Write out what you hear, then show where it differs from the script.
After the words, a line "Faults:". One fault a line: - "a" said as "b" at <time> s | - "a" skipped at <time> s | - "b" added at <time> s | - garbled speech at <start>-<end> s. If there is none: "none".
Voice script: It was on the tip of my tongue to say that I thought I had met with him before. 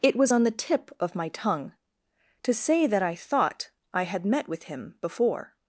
It was on the tip of my tongue to say that I thought I had met with him before.
Faults:
none